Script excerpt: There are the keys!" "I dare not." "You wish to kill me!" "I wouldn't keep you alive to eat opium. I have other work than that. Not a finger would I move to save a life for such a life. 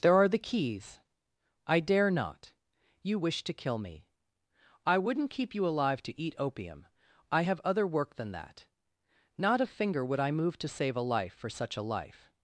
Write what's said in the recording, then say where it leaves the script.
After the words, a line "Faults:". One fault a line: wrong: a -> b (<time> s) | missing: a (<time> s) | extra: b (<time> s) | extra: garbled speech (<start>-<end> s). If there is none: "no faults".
There are the keys!" "I dare not." "You wish to kill me!" "I wouldn't keep you alive to eat opium. I have other work than that. Not a finger would I move to save a life for such a life.
Faults:
no faults